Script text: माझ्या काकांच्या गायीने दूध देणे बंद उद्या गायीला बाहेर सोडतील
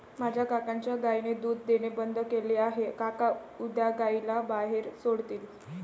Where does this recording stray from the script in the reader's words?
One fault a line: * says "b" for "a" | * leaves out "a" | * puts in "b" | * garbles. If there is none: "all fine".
* puts in "केले आहे काका"